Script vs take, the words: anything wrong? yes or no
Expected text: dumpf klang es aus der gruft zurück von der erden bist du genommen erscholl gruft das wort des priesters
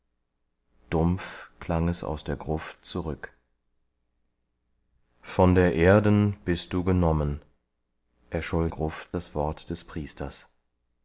no